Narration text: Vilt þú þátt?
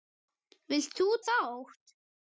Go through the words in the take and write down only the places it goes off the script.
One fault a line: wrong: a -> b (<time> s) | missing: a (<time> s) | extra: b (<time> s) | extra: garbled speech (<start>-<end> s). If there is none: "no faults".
no faults